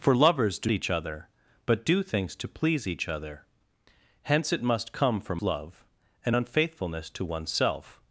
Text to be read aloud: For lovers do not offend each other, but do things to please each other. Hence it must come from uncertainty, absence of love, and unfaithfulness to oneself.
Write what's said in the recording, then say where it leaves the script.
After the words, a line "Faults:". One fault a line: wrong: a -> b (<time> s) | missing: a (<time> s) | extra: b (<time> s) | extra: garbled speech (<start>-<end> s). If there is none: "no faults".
For lovers do each other, but do things to please each other. Hence it must come from love, and unfaithfulness to oneself.
Faults:
missing: not offend (0.7 s)
missing: uncertainty absence of (5.4 s)